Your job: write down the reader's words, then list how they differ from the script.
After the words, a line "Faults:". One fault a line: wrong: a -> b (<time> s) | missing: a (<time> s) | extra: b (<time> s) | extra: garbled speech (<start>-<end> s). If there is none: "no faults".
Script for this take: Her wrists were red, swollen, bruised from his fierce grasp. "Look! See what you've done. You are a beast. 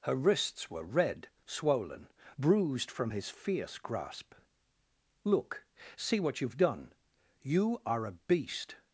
Her wrists were red, swollen, bruised from his fierce grasp. "Look! See what you've done. You are a beast.
Faults:
no faults